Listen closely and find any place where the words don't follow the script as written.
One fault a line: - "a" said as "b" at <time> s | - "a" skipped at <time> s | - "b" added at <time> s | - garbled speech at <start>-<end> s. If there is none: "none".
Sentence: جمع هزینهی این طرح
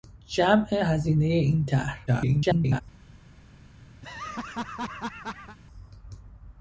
- garbled speech at 2.1-2.8 s